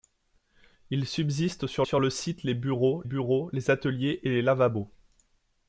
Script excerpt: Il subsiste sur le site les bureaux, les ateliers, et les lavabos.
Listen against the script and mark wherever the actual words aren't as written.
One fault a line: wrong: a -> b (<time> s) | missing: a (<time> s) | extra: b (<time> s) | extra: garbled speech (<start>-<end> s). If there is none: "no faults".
extra: sur (1.8 s)
extra: bureaux (3.0 s)